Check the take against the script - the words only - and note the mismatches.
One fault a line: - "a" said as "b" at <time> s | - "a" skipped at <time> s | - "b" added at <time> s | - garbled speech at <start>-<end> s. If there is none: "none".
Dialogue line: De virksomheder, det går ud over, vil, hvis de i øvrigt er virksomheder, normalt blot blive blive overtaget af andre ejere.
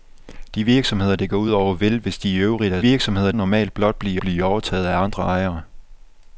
none